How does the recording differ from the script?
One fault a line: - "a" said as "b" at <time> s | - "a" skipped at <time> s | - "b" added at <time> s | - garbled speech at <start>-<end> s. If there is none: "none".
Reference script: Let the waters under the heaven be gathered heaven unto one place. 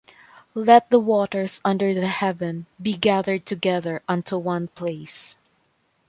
- "heaven" said as "together" at 3.5 s